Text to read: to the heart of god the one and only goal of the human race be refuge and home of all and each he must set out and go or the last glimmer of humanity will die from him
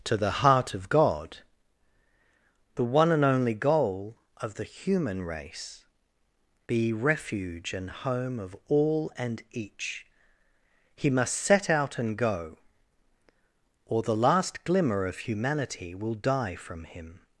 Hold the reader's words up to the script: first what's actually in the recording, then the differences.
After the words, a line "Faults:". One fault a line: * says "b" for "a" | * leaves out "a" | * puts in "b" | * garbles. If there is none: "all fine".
to the heart of god the one and only goal of the human race be refuge and home of all and each he must set out and go or the last glimmer of humanity will die from him
Faults:
all fine